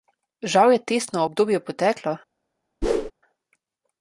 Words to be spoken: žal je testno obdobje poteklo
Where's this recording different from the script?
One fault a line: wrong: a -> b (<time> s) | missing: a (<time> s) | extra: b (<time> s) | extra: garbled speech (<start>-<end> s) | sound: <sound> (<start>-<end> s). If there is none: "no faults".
sound: whoosh (2.8-3.1 s)